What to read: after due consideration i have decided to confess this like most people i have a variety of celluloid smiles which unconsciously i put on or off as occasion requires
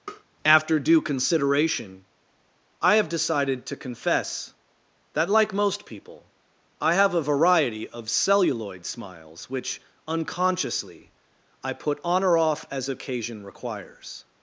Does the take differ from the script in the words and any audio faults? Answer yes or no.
yes